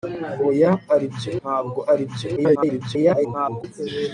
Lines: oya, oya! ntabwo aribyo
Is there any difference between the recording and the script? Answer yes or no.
yes